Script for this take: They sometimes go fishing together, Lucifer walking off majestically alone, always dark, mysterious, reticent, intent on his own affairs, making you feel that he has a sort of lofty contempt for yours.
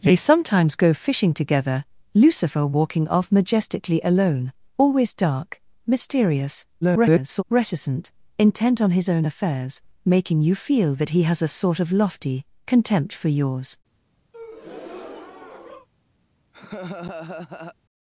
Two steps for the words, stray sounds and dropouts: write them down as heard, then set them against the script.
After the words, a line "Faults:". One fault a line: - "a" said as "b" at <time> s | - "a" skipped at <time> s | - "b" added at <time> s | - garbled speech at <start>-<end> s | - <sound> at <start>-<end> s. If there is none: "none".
They sometimes go fishing together, Lucifer walking off majestically alone, always dark, mysterious, [garbled] reticent, intent on his own affairs, making you feel that he has a sort of lofty contempt for yours.
Faults:
- garbled speech at 6.8-7.4 s
- breath at 14.3-15.9 s
- laugh at 16.5-17.8 s